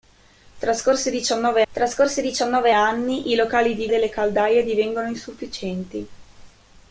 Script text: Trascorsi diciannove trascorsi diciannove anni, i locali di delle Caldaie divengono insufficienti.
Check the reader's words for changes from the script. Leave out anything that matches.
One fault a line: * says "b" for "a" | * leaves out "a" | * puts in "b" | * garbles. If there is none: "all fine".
all fine